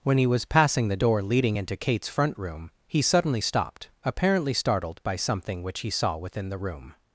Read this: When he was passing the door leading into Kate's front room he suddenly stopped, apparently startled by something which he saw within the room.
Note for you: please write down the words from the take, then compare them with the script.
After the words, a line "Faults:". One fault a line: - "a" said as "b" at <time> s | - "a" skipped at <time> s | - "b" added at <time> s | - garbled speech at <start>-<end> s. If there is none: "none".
When he was passing the door leading into Kate's front room he suddenly stopped, apparently startled by something which he saw within the room.
Faults:
none